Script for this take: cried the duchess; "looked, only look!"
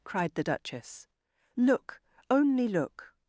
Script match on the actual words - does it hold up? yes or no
no